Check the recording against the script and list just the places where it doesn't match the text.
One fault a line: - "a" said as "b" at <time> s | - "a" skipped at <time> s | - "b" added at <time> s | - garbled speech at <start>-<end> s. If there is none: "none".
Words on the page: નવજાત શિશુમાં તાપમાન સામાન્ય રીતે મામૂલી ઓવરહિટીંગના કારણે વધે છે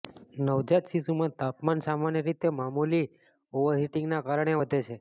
none